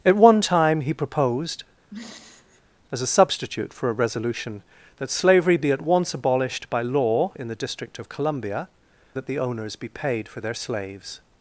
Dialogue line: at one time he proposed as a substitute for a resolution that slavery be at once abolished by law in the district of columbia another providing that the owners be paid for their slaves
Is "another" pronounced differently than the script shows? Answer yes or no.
yes